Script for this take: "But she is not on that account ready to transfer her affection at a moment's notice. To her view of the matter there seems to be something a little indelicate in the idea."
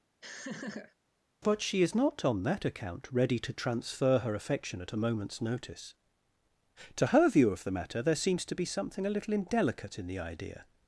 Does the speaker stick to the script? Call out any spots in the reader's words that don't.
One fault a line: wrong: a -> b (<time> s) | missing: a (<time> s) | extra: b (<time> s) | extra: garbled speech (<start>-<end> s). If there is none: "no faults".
no faults